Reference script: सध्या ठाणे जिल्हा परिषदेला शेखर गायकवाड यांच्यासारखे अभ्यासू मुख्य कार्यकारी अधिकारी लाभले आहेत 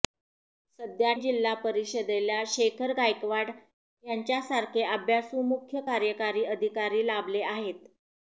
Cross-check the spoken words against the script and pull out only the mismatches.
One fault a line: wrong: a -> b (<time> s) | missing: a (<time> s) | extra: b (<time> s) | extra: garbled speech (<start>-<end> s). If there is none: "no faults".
missing: ठाणे (1.1 s)